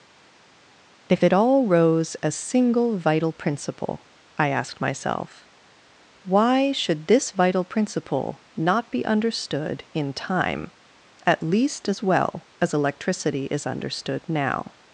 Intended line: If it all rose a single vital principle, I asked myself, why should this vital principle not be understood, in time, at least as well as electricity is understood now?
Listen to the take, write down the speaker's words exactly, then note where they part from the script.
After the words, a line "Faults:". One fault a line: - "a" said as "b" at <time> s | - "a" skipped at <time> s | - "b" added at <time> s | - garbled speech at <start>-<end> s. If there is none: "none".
If it all rose a single vital principle, I asked myself, why should this vital principle not be understood, in time, at least as well as electricity is understood now?
Faults:
none